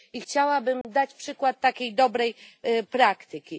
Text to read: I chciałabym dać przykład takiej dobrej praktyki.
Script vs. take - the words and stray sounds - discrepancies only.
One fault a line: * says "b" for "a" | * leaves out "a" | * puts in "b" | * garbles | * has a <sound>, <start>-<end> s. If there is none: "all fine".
* has a dropout, 0.8-0.8 s